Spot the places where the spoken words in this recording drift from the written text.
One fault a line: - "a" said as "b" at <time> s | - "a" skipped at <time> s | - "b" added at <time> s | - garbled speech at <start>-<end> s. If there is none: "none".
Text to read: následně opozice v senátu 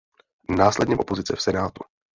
none